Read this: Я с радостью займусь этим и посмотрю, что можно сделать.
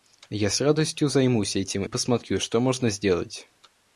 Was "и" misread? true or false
true